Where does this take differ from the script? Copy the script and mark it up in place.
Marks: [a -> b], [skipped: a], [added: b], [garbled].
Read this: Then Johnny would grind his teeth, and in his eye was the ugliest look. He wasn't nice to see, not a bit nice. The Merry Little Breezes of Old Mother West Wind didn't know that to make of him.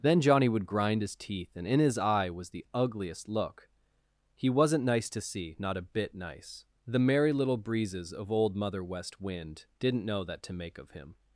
Then Johnny would grind his teeth, and in his eye was the ugliest look. He wasn't nice to see, not a bit nice. The Merry Little Breezes of Old Mother West Wind didn't know that to make of him.